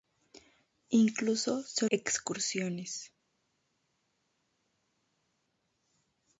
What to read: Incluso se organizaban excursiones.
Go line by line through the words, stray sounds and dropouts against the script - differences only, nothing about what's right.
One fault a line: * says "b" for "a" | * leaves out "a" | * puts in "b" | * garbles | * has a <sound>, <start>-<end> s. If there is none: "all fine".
* leaves out "organizaban"